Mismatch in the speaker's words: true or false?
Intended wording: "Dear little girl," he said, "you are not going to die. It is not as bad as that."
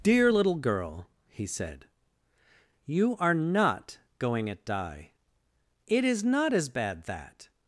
true